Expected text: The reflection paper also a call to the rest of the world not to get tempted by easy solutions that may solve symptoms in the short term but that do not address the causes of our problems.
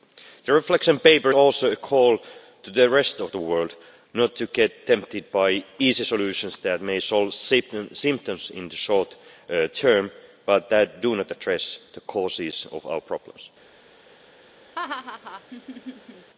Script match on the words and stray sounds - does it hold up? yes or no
no